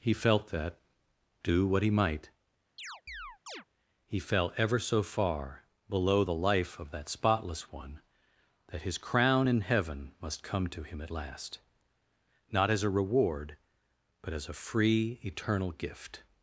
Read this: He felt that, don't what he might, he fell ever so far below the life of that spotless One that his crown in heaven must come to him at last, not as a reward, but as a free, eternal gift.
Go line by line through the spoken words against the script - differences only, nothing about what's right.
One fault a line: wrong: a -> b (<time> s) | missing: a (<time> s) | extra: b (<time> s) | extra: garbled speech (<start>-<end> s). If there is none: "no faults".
wrong: don't -> do (1.4 s)